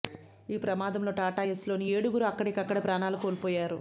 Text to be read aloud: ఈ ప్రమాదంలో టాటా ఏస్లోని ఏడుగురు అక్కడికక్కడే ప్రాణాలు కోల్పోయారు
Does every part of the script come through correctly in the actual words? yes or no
yes